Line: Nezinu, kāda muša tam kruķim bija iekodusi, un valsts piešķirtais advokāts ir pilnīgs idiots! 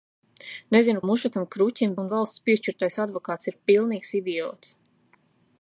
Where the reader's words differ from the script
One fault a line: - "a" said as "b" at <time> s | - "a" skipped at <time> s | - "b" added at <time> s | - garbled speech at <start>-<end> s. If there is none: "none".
- "kāda" skipped at 1.0 s
- "bija iekodusi" skipped at 1.9 s